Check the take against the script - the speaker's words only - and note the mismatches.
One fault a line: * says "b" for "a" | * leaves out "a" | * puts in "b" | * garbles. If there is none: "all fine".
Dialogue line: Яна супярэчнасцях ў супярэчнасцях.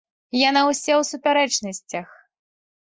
* says "ўся" for "супярэчнасцях"